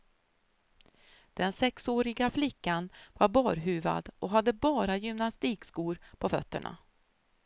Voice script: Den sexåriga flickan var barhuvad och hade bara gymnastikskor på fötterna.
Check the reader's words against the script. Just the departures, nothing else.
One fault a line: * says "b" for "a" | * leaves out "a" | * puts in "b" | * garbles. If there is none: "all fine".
all fine